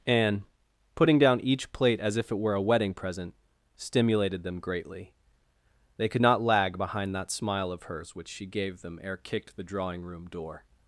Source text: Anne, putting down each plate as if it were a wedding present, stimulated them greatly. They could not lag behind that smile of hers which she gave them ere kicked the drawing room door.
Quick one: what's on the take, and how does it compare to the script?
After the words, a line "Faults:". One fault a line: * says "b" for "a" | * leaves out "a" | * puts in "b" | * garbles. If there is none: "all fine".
Anne, putting down each plate as if it were a wedding present, stimulated them greatly. They could not lag behind that smile of hers which she gave them ere kicked the drawing room door.
Faults:
all fine